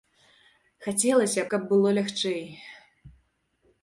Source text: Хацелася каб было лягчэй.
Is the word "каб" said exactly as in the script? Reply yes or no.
yes